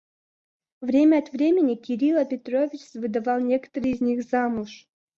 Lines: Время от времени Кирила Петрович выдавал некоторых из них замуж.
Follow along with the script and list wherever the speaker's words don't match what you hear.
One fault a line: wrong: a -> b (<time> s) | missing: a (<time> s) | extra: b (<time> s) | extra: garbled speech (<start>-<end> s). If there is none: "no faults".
no faults